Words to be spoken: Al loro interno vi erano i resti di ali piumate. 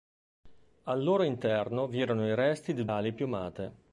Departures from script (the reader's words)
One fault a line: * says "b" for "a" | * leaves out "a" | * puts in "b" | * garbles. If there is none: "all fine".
all fine